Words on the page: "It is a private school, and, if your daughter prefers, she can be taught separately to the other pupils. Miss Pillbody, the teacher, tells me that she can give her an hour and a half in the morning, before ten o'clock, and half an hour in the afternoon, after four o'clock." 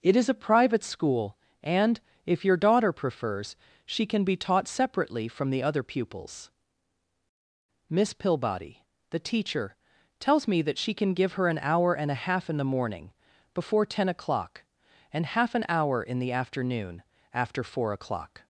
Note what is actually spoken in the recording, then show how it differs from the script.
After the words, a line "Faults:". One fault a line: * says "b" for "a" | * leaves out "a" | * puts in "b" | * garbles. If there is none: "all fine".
"It is a private school, and, if your daughter prefers, she can be taught separately from the other pupils. Miss Pillbody, the teacher, tells me that she can give her an hour and a half in the morning, before ten o'clock, and half an hour in the afternoon, after four o'clock."
Faults:
* says "from" for "to"